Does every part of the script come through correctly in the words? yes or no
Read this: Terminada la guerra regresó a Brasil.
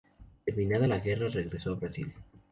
yes